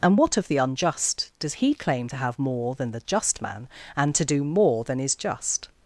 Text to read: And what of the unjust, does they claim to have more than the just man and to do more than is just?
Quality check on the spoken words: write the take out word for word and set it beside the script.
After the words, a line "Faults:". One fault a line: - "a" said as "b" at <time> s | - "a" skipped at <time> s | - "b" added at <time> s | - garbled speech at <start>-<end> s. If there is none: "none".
And what of the unjust, does he claim to have more than the just man and to do more than is just?
Faults:
- "they" said as "he" at 1.5 s